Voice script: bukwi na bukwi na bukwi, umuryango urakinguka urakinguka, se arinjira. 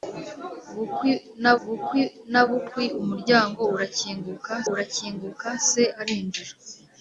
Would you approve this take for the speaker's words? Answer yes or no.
yes